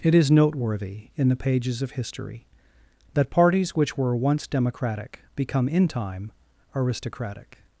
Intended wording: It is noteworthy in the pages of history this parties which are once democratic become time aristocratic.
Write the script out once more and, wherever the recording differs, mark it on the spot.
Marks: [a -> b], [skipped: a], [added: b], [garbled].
It is noteworthy in the pages of history [this -> that] parties which [are -> were] once democratic become [added: in] time aristocratic.